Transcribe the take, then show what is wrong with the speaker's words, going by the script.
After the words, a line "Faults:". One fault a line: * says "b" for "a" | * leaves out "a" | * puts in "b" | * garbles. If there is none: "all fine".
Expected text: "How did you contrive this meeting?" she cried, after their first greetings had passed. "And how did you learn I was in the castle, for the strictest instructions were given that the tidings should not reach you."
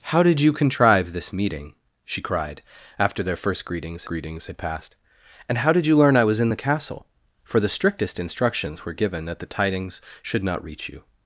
"How did you contrive this meeting?" she cried, after their first greetings greetings had passed. "And how did you learn I was in the castle, for the strictest instructions were given that the tidings should not reach you."
Faults:
* puts in "greetings"